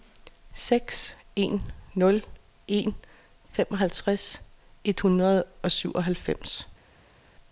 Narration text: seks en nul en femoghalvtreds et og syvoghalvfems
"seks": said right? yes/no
yes